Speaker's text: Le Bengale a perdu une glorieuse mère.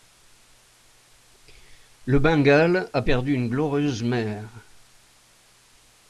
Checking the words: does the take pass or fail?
pass